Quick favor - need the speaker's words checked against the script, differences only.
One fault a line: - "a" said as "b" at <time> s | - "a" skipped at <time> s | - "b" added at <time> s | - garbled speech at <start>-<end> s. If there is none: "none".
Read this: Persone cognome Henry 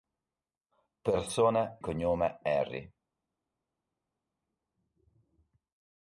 none